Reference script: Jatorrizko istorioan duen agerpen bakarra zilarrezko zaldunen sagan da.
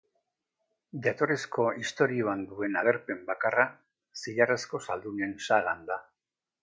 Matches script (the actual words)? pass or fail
pass